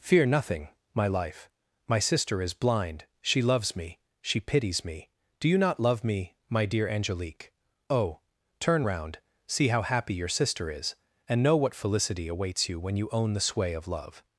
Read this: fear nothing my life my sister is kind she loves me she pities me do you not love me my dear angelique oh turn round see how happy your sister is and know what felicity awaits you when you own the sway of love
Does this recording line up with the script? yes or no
no